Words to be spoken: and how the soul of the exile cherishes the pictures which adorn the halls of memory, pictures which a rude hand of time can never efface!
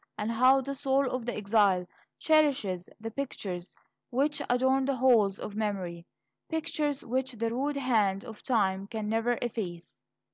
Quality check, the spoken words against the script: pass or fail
fail